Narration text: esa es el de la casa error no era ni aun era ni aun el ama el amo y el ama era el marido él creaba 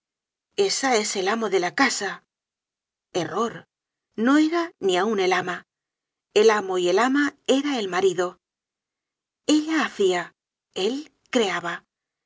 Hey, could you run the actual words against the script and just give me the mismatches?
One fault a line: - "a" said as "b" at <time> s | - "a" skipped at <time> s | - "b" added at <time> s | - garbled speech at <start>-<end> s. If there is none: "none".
- "amo" added at 1.3 s
- "era ni aun" skipped at 5.2 s
- "ella hacia" added at 9.5 s